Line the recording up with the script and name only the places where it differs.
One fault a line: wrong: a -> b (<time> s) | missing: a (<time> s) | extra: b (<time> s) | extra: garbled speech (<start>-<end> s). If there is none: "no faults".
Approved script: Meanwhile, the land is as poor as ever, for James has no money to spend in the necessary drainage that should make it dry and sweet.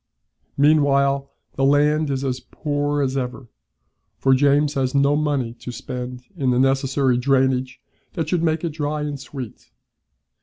no faults